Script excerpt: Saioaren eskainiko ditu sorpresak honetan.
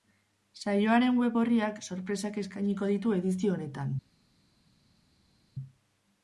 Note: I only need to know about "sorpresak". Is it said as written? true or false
false